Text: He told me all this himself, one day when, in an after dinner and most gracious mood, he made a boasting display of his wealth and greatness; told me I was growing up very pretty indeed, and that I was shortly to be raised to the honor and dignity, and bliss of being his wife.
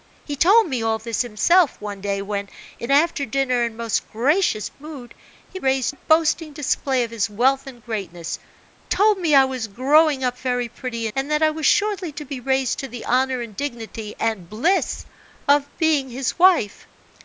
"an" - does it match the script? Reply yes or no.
no